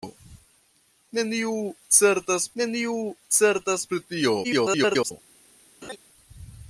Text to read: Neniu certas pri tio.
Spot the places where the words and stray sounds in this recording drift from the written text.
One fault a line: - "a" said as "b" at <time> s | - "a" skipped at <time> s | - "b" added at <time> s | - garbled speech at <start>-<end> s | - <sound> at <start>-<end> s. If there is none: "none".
- "neniu certas" added at 2.6 s
- garbled speech at 4.4-5.1 s
- laugh at 5.8-6.0 s